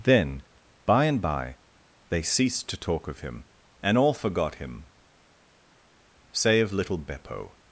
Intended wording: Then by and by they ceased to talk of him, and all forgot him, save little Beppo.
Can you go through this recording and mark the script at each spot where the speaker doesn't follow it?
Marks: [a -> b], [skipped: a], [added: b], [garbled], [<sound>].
Then by and by they ceased to talk of him, and all forgot him, save little Beppo.